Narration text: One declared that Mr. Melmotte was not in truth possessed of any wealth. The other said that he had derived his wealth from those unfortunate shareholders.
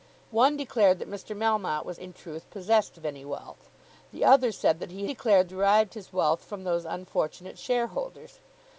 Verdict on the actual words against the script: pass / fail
fail